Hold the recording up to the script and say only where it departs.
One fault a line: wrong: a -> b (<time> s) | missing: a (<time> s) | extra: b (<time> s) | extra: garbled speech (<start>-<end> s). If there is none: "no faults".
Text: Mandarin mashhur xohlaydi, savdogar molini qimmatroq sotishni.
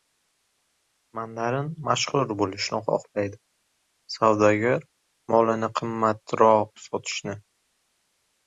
extra: bo‘lishni (2.4 s)